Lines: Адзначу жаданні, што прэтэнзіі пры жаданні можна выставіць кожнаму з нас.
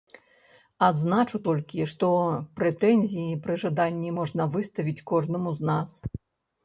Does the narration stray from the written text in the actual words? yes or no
yes